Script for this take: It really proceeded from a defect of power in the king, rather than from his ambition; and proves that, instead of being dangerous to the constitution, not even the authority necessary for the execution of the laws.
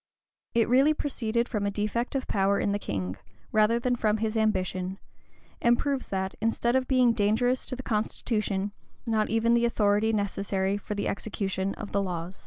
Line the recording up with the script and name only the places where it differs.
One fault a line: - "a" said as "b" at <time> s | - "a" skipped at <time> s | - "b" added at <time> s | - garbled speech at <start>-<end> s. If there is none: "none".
none